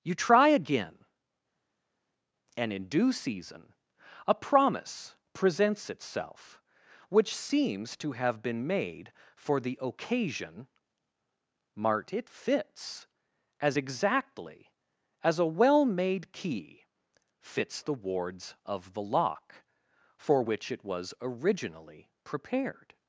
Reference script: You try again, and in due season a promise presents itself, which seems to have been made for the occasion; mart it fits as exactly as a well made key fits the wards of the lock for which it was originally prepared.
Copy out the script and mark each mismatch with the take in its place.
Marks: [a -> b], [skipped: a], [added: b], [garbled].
You try again, and in due season a promise presents itself, which seems to have been made for the occasion; mart it fits as exactly as a well made key fits the wards of the lock for which it was originally prepared.